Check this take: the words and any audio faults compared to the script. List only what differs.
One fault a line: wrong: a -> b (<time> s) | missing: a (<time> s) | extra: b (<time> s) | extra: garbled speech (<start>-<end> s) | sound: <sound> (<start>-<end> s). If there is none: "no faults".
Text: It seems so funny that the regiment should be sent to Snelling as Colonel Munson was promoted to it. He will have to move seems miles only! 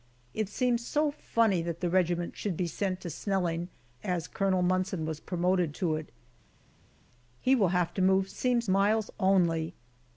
no faults